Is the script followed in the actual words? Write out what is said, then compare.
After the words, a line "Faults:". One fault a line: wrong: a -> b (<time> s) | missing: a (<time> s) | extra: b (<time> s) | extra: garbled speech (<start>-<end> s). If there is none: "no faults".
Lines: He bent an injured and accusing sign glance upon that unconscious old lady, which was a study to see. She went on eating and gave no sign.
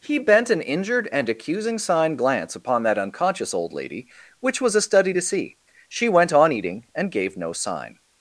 He bent an injured and accusing sign glance upon that unconscious old lady, which was a study to see. She went on eating and gave no sign.
Faults:
no faults